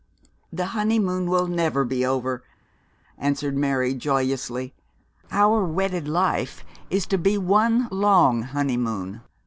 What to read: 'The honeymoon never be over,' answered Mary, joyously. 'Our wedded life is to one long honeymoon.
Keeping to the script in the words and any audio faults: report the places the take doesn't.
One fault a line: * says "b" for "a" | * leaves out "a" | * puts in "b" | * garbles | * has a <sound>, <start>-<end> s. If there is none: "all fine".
* puts in "will"
* puts in "be"